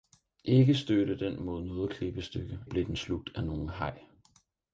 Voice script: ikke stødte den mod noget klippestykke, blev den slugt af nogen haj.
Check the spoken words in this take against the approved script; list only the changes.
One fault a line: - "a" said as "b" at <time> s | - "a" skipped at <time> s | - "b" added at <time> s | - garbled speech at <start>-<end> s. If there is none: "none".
none